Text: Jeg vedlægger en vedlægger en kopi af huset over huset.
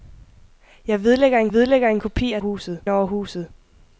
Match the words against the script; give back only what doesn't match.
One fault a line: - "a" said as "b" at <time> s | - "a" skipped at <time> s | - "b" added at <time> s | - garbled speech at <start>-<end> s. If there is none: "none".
none